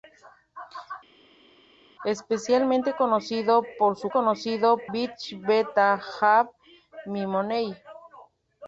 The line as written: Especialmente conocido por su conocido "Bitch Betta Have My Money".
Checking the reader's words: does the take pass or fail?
pass